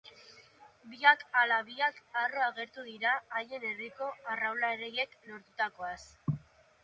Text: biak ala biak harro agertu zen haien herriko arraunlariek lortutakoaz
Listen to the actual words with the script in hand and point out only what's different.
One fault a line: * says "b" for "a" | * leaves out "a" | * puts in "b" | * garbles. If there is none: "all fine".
* says "dira" for "zen"